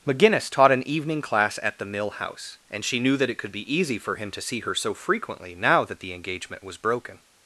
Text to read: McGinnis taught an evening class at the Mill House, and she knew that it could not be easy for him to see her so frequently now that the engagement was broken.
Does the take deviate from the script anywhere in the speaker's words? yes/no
yes